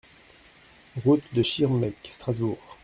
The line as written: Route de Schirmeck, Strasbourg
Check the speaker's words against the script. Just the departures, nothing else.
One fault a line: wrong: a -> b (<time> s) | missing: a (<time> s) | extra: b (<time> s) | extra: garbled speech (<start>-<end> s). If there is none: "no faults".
no faults